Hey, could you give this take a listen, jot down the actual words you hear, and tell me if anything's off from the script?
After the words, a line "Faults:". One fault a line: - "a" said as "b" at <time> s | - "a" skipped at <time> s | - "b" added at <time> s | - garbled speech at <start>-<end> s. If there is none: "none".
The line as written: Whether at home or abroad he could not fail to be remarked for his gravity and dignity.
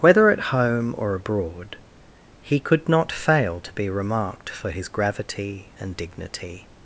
Whether at home or abroad he could not fail to be remarked for his gravity and dignity.
Faults:
none